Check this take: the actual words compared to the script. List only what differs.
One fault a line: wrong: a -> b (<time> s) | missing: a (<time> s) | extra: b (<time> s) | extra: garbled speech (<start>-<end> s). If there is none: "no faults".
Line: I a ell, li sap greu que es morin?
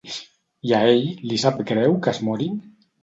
no faults